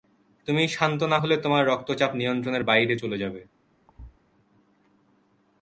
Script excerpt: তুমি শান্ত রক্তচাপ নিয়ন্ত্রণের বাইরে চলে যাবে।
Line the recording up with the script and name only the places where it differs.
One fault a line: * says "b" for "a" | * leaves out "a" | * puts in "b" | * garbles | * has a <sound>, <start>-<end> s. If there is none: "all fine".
* puts in "না হলে তোমার"
* has a thud, 3.9-4.2 s